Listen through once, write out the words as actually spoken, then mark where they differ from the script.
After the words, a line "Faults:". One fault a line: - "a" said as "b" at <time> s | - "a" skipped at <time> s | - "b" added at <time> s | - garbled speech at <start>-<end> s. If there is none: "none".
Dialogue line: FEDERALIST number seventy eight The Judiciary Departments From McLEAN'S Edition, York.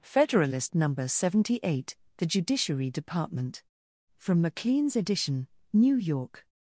FEDERALIST number seventy eight The Judiciary Department From McLEAN'S Edition, New York.
Faults:
- "Departments" said as "Department" at 2.9 s
- "New" added at 5.7 s